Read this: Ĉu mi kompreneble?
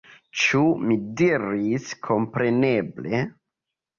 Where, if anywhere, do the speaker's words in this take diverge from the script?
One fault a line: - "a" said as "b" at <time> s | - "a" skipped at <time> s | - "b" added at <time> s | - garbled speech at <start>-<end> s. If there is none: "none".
- "diris" added at 1.2 s